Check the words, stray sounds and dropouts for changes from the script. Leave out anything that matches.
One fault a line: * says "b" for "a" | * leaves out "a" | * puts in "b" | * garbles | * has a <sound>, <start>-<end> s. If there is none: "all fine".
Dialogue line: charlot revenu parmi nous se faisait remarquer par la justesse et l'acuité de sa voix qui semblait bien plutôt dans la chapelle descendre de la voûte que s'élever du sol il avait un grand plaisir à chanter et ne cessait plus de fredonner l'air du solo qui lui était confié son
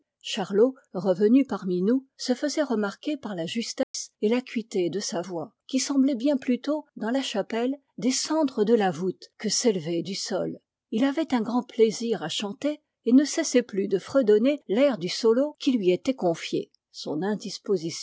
* has a dropout, 3.8-3.9 s